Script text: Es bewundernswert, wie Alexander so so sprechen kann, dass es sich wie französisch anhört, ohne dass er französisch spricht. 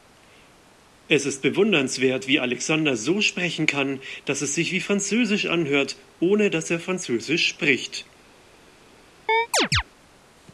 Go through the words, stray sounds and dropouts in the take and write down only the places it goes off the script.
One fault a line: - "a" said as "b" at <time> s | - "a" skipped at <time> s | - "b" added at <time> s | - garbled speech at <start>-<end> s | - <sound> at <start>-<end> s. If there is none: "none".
- "ist" added at 1.3 s
- "so" skipped at 3.2 s
- chirp at 9.3-9.8 s